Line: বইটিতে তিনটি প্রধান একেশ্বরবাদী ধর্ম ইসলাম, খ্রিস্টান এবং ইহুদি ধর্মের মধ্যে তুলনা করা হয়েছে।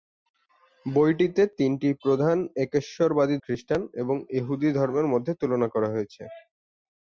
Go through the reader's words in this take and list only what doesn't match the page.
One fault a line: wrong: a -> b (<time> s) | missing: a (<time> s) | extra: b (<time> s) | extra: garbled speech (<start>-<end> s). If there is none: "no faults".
missing: ধর্ম ইসলাম (3.4 s)